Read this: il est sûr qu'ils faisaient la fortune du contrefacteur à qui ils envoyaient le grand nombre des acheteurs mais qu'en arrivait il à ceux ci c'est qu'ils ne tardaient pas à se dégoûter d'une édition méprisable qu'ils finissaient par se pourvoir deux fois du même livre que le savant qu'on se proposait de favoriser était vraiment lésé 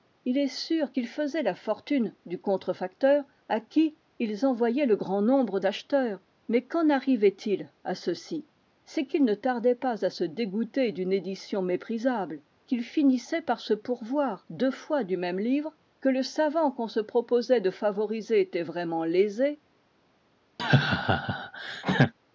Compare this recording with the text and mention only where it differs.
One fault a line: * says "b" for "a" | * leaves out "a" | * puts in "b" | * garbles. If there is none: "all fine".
* leaves out "des"